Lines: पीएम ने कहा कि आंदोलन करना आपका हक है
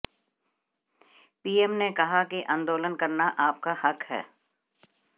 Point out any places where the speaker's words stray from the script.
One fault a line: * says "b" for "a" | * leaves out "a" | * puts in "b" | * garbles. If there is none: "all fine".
all fine